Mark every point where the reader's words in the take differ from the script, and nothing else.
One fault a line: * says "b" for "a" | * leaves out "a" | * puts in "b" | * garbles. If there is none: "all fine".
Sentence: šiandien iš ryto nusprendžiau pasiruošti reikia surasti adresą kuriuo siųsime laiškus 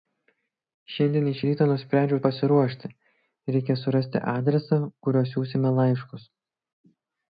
all fine